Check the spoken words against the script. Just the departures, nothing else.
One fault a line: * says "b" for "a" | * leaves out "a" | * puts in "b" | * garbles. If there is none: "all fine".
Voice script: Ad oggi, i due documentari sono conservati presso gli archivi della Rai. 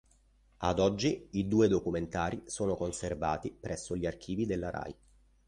all fine